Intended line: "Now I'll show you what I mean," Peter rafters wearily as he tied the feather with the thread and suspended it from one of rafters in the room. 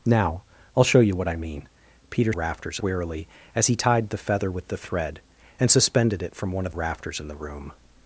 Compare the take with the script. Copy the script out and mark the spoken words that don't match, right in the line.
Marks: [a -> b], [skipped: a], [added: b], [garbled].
"Now I'll show you what I mean," Peter rafters wearily as he tied the feather with the thread and suspended it from one of rafters in the room.